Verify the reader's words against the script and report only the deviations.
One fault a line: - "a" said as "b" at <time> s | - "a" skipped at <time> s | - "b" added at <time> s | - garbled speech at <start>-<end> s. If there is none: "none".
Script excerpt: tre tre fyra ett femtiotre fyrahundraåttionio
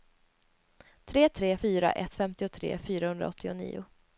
none